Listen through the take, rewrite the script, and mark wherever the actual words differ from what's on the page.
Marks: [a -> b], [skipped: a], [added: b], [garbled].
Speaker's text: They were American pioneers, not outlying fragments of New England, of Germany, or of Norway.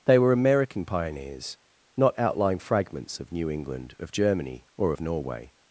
They were American pioneers, not outlying fragments of New England, of Germany, or of Norway.